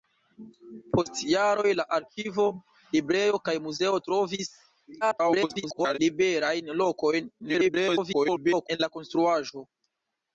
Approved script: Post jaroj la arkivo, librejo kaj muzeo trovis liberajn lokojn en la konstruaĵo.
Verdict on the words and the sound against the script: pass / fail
fail